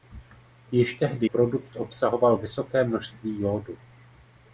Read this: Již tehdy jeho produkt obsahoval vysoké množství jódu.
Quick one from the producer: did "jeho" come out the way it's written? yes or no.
no